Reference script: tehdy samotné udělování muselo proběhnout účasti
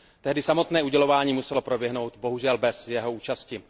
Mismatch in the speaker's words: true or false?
true